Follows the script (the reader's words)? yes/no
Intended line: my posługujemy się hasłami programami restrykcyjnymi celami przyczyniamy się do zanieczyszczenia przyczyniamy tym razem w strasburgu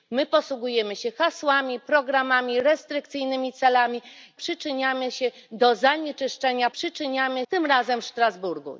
yes